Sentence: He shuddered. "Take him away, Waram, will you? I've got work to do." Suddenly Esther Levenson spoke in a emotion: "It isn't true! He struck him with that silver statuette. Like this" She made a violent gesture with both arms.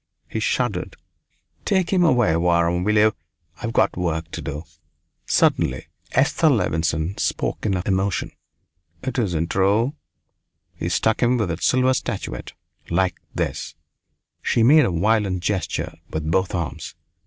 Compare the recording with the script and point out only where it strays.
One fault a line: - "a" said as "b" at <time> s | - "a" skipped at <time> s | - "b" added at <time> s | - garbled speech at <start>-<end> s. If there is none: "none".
none